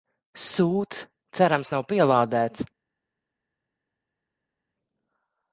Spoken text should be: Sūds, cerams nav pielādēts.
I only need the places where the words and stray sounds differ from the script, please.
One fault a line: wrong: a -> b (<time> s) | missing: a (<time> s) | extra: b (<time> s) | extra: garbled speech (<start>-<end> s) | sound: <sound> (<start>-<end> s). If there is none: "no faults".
no faults